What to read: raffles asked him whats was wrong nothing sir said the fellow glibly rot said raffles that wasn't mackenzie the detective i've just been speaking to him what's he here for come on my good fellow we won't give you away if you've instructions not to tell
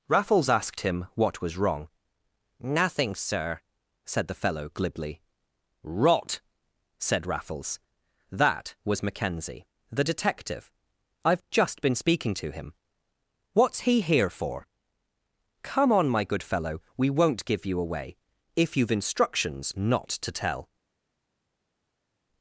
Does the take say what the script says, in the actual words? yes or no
no